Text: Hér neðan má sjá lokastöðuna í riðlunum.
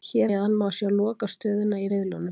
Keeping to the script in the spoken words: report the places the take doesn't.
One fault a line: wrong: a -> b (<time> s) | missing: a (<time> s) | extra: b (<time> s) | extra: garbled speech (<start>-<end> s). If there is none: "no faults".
no faults